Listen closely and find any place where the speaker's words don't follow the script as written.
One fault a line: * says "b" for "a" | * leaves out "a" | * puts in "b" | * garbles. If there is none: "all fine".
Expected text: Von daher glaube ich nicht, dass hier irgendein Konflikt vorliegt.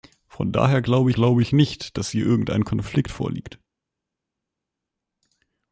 * puts in "glaube"